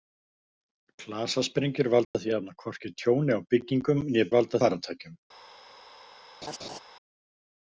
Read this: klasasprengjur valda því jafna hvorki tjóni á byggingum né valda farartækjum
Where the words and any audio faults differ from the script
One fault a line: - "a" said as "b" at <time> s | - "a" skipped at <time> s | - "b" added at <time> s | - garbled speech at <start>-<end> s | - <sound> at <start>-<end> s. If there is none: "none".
- dropout at 2.0-2.1 s
- laugh at 6.4-6.8 s